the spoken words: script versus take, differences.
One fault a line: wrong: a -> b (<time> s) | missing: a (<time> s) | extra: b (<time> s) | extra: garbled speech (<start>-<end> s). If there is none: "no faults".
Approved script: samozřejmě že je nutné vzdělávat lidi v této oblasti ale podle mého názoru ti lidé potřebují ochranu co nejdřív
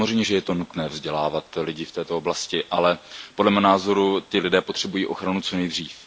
no faults